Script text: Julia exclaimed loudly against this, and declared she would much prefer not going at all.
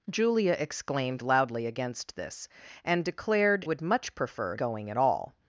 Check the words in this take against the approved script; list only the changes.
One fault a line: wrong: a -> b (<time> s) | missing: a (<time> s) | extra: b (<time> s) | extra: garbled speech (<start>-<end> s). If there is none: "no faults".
missing: she (3.7 s)
missing: not (4.6 s)